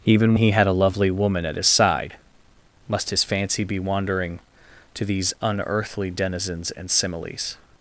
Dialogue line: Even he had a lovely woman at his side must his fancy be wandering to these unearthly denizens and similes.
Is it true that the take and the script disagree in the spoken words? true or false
false